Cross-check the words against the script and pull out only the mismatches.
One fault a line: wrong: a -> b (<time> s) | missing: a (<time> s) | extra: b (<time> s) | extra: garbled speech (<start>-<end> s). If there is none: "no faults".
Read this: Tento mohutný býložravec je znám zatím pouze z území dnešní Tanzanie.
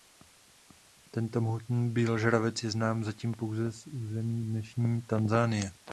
no faults